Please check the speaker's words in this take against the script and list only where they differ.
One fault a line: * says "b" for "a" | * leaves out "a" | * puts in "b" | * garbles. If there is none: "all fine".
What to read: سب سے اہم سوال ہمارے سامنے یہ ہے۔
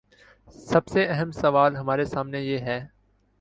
all fine